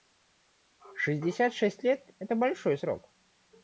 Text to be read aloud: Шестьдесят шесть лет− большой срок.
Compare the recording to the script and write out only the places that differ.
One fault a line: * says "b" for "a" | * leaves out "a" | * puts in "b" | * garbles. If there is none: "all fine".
* puts in "это"